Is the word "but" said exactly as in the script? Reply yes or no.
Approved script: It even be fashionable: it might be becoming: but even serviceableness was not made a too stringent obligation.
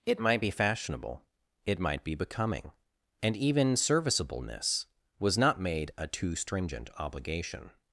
no